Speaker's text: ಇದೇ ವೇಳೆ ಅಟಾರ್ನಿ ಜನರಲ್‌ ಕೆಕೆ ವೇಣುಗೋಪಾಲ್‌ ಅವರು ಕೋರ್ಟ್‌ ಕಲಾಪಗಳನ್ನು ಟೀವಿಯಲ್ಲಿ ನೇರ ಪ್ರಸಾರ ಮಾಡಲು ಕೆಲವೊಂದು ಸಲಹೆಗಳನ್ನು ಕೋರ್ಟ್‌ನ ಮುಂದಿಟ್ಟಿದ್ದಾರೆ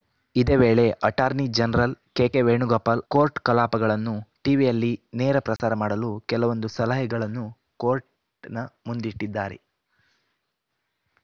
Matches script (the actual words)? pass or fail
fail